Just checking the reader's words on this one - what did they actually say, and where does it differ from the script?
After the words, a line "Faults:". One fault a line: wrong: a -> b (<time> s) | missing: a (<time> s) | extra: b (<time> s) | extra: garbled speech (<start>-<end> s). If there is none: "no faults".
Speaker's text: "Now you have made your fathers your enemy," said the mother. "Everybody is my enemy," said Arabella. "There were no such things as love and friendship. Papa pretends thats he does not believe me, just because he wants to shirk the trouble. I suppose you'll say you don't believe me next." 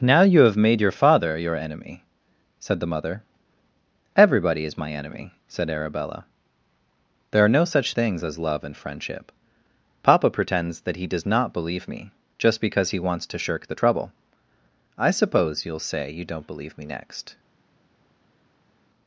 "Now you have made your father your enemy," said the mother. "Everybody is my enemy," said Arabella. "There are no such things as love and friendship. Papa pretends that he does not believe me, just because he wants to shirk the trouble. I suppose you'll say you don't believe me next."
Faults:
wrong: fathers -> father (0.9 s)
wrong: were -> are (7.5 s)
wrong: thats -> that (10.8 s)